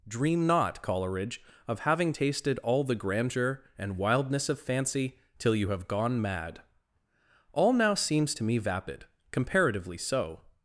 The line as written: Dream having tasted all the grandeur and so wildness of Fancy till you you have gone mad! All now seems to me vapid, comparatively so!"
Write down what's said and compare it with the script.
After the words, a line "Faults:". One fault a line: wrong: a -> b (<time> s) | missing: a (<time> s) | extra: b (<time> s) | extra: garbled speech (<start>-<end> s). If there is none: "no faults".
Dream not, Coleridge, of having tasted all the grandeur and wildness of Fancy till you have gone mad! All now seems to me vapid, comparatively so!"
Faults:
extra: not Coleridge of (0.5 s)
missing: so (4.0 s)
missing: you (5.7 s)